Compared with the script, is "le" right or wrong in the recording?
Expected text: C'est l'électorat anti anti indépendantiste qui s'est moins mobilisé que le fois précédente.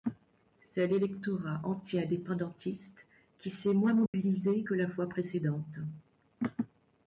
wrong